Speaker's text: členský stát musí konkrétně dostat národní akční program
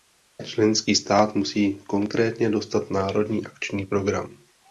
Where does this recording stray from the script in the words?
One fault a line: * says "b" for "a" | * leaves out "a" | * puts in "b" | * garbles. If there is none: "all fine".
all fine